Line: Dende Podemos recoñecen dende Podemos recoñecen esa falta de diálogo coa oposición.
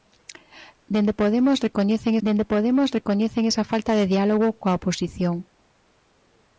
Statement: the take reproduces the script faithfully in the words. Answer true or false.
true